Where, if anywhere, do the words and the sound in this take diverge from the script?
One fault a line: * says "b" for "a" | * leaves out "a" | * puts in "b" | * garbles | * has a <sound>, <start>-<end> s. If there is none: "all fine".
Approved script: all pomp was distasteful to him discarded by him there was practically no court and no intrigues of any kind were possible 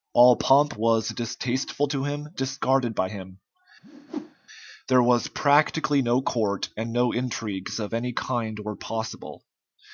* has a whoosh, 3.8-4.3 s